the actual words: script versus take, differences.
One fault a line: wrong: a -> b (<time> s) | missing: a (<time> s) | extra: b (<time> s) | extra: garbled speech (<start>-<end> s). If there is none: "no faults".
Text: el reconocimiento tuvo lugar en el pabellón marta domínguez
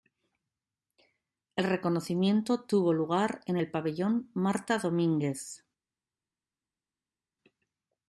no faults